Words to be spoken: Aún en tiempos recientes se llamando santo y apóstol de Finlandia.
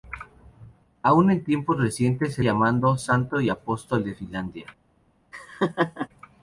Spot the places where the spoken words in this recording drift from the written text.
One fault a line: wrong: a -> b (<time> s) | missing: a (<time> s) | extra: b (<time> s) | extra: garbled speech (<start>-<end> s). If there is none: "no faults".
no faults